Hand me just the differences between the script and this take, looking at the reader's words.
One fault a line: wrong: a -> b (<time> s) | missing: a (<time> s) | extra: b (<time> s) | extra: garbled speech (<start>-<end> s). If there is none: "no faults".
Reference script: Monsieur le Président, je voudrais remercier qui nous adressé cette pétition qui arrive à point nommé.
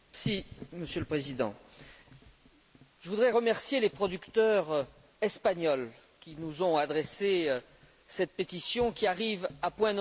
extra: les producteurs espagnols (3.8 s)
extra: ont (6.6 s)